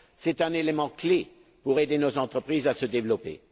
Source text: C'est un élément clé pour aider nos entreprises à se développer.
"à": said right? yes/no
yes